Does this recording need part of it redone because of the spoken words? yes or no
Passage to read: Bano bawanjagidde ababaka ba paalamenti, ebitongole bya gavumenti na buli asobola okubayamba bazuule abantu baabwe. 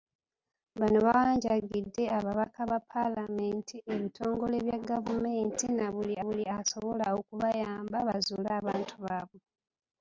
yes